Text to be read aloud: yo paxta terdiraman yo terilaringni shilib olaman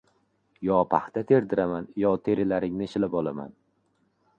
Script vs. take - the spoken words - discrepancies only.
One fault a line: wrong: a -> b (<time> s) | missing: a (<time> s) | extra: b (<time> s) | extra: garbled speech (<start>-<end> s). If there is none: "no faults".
no faults